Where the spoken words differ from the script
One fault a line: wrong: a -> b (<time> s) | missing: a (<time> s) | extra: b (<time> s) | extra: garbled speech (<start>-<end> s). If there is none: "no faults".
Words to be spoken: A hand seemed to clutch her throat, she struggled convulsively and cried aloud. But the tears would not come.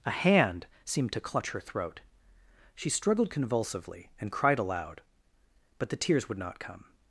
no faults